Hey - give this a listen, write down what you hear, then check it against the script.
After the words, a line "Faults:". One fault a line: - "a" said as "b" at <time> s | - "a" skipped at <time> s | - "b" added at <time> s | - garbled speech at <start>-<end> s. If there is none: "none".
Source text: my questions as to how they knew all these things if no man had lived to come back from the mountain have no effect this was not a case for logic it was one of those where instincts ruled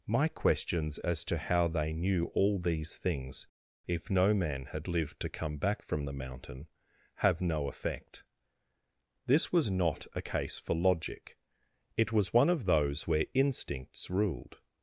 my questions as to how they knew all these things if no man had lived to come back from the mountain have no effect this was not a case for logic it was one of those where instincts ruled
Faults:
none